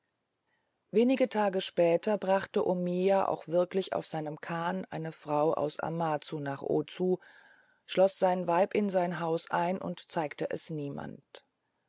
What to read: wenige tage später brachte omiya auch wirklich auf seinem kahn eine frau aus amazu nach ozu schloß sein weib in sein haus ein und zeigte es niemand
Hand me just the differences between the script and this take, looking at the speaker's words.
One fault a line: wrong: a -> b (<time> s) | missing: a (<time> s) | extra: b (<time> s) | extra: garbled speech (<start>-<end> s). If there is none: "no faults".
no faults